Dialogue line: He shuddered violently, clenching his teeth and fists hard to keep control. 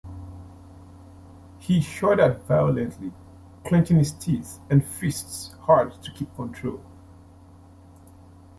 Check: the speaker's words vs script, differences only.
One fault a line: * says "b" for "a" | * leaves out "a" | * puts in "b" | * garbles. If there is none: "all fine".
all fine